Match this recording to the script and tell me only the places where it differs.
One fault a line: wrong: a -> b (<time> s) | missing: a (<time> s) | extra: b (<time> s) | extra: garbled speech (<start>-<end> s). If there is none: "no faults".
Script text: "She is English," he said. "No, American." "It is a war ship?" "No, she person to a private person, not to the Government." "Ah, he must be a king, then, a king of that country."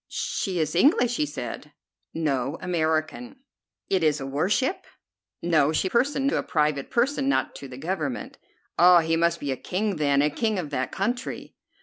no faults